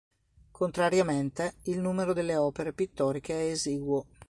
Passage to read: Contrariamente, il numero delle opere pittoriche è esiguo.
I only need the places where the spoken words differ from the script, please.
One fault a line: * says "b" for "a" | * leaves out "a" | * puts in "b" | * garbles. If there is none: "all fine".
all fine